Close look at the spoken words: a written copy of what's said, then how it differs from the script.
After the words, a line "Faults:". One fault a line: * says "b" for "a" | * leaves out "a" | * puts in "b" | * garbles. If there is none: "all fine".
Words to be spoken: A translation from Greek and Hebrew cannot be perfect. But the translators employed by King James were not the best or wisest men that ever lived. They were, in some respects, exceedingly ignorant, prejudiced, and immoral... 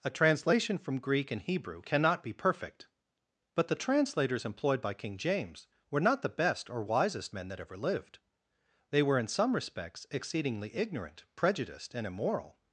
A translation from Greek and Hebrew cannot be perfect. But the translators employed by King James were not the best or wisest men that ever lived. They were, in some respects, exceedingly ignorant, prejudiced, and immoral...
Faults:
all fine